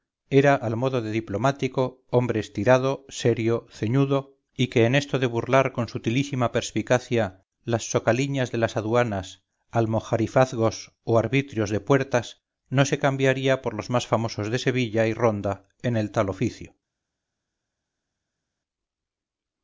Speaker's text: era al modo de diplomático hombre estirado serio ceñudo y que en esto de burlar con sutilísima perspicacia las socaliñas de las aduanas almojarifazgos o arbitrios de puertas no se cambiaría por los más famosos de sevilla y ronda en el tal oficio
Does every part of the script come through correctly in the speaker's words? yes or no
yes